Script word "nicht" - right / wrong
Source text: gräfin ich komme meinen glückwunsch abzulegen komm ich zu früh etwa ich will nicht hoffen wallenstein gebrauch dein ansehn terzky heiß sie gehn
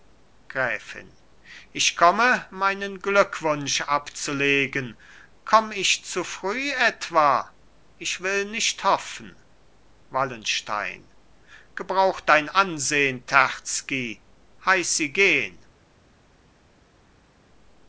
right